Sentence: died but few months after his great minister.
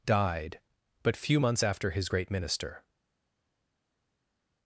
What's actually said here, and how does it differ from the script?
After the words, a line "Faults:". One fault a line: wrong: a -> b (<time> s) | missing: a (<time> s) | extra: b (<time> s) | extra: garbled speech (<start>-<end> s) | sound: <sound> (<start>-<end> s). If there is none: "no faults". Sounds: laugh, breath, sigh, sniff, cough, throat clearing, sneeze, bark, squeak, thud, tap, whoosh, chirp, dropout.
died but few months after his great minister.
Faults:
no faults